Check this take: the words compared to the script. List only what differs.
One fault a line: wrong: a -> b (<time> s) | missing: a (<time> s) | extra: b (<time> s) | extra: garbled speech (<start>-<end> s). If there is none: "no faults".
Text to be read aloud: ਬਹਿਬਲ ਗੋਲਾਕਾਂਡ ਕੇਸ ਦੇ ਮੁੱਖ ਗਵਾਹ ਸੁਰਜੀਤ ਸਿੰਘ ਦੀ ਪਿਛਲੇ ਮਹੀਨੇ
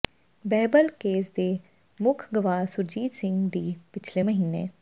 missing: ਗੋਲਾਕਾਂਡ (0.9 s)